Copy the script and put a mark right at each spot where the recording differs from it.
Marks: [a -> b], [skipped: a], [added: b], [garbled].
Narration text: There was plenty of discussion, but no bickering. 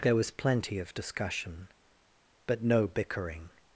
There was plenty of discussion, but no bickering.